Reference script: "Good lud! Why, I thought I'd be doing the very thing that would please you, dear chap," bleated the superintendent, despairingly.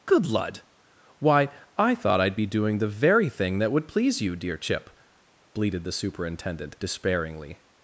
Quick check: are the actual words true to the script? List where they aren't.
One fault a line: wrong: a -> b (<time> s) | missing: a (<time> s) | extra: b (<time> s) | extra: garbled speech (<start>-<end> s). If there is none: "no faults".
wrong: chap -> chip (4.6 s)